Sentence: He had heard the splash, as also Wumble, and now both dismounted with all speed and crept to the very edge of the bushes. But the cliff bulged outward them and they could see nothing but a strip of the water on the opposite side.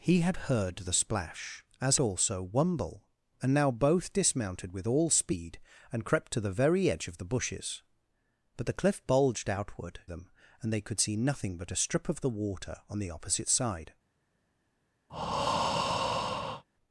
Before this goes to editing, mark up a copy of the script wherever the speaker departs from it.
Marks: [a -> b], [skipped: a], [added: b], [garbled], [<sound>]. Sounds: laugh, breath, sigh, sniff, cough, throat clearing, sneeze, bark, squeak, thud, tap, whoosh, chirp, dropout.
He had heard the splash, as also Wumble, and now both dismounted with all speed and crept to the very edge of the bushes. But the cliff bulged outward them and they could see nothing but a strip of the water on the opposite side. [breath]